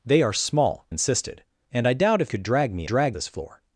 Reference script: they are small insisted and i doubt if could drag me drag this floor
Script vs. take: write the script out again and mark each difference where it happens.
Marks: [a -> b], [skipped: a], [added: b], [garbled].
they are small insisted and i doubt if could drag me drag this floor